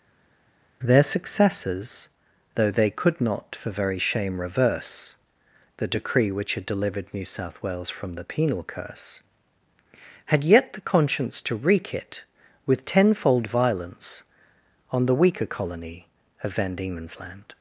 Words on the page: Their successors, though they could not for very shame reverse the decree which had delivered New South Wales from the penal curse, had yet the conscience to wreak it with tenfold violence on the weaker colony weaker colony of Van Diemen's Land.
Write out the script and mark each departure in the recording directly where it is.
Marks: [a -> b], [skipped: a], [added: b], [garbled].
Their successors, though they could not for very shame reverse the decree which had delivered New South Wales from the penal curse, had yet the conscience to wreak it with tenfold violence on the weaker colony [skipped: weaker colony] of Van Diemen's Land.